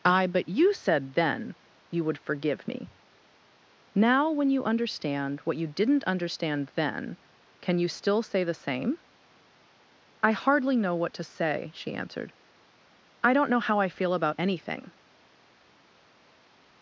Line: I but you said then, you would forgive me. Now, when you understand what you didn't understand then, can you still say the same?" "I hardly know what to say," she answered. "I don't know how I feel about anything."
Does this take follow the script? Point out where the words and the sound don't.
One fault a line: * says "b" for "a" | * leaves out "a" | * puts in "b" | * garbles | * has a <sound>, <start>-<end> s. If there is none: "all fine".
all fine